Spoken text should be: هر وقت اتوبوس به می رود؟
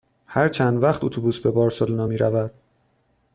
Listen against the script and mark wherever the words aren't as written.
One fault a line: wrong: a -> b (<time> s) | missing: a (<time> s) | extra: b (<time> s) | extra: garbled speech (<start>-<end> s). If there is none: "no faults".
extra: چند (0.5 s)
extra: بارسلونا (1.5 s)